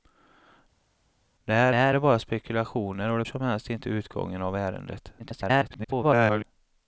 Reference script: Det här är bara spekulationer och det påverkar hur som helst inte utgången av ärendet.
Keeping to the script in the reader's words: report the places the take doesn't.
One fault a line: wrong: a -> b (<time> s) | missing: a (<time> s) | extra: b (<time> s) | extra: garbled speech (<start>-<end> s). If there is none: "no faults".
extra: här (1.7 s)
missing: påverkar hur (3.2 s)
extra: garbled speech (5.2-6.4 s)